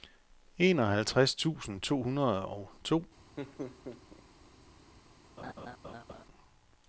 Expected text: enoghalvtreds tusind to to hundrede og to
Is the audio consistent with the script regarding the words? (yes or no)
no